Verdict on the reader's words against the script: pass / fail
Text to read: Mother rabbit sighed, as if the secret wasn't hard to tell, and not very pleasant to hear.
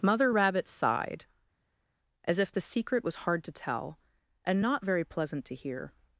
fail